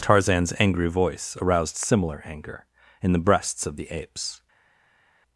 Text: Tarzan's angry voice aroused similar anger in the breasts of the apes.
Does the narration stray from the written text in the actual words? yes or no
no